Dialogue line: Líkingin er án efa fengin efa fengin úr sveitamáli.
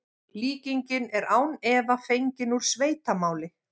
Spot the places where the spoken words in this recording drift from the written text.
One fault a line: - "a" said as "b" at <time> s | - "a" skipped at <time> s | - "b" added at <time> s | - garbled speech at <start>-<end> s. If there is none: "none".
- "efa fengin" skipped at 2.5 s